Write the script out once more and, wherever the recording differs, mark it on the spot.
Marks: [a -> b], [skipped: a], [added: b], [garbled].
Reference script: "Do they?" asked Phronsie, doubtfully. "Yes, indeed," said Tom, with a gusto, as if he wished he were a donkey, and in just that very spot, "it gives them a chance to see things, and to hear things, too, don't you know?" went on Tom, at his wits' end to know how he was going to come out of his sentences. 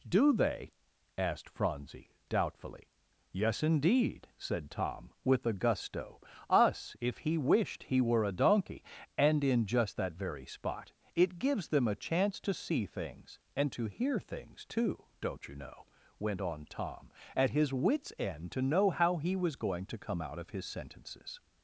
"Do they?" asked Phronsie, doubtfully. "Yes, indeed," said Tom, with a gusto, [as -> us] if he wished he were a donkey, and in just that very spot, "it gives them a chance to see things, and to hear things, too, don't you know?" went on Tom, at his wits' end to know how he was going to come out of his sentences.